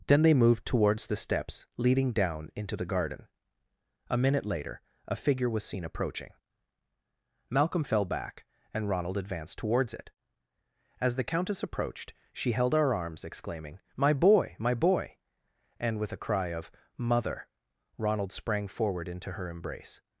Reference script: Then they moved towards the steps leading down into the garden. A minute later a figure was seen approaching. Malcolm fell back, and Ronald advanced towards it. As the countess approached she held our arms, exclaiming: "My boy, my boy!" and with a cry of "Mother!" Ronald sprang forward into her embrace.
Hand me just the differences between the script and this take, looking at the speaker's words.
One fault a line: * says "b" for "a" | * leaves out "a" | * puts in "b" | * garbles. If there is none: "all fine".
all fine